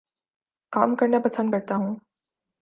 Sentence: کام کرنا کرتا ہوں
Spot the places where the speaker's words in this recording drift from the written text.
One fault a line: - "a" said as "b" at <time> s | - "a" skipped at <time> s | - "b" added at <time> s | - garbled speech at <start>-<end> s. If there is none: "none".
- "پسند" added at 1.2 s